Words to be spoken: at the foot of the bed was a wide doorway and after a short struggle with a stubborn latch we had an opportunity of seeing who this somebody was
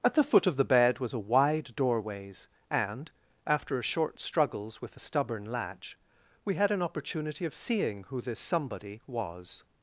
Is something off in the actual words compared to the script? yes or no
yes